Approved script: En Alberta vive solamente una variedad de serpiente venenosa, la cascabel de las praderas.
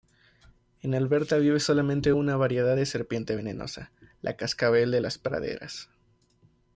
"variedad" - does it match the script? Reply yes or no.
yes